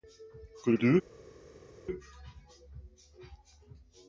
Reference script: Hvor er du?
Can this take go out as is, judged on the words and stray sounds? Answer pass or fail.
pass